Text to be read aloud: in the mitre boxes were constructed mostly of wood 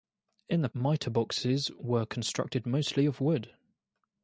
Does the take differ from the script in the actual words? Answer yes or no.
no